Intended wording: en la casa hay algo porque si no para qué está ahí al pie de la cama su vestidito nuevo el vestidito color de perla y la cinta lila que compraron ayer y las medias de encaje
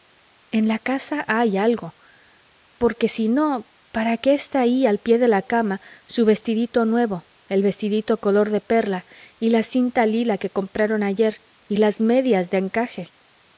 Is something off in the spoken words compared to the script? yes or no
no